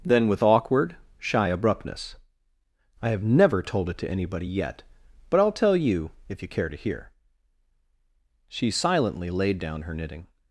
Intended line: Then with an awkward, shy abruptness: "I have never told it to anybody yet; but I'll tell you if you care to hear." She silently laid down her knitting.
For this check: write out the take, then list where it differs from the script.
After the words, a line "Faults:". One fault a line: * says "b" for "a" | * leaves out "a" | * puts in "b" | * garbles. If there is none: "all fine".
Then with awkward, shy abruptness: "I have never told it to anybody yet; but I'll tell you if you care to hear." She silently laid down her knitting.
Faults:
* leaves out "an"